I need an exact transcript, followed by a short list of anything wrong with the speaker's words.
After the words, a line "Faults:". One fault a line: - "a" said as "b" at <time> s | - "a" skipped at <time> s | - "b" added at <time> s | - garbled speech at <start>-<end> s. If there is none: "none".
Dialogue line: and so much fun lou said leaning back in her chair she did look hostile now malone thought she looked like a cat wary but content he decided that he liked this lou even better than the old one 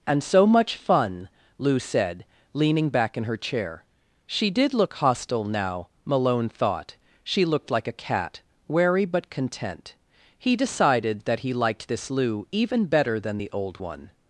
and so much fun lou said leaning back in her chair she did look hostile now malone thought she looked like a cat wary but content he decided that he liked this lou even better than the old one
Faults:
none